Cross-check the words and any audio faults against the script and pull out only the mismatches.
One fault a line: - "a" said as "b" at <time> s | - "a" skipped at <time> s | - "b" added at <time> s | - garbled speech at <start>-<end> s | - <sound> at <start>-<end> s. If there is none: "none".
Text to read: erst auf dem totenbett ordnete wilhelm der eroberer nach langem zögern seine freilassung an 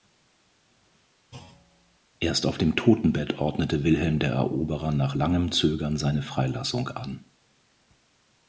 - thud at 1.3-2.0 s